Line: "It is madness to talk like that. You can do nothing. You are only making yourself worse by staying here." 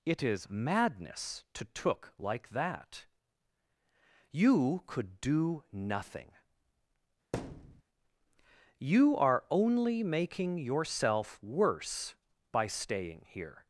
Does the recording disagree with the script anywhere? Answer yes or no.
yes